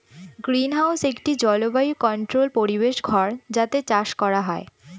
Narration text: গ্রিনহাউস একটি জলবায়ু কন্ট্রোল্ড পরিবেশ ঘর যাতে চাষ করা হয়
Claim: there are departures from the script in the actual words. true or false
false